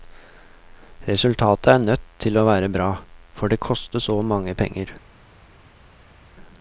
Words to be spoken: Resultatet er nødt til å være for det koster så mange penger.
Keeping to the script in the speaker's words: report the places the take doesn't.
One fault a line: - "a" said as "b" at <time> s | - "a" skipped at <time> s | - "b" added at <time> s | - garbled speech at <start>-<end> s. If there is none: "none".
- "bra" added at 2.7 s